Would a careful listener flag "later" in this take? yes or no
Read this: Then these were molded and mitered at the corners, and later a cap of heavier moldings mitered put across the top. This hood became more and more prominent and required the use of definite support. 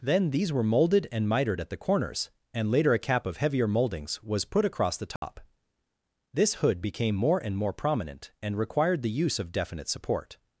no